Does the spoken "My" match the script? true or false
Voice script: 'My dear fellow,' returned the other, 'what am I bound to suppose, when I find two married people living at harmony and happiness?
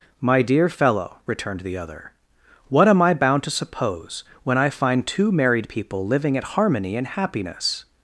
true